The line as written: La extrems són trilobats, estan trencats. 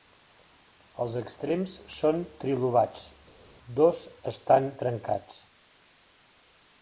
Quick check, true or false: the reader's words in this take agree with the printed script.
false